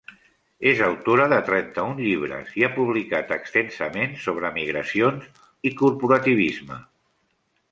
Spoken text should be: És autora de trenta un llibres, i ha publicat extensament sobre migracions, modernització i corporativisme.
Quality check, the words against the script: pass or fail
fail